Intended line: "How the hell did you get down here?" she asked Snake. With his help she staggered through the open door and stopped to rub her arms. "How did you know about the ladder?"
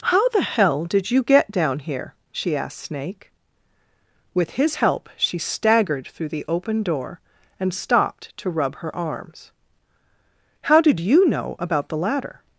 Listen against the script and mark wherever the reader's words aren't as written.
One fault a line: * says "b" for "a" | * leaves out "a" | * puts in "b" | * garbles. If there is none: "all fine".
all fine